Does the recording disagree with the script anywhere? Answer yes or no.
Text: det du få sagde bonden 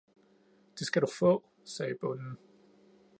yes